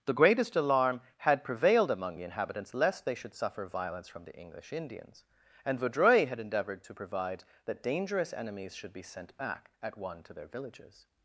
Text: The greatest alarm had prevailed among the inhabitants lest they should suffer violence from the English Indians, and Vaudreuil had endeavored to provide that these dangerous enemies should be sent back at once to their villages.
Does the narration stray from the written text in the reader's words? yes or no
yes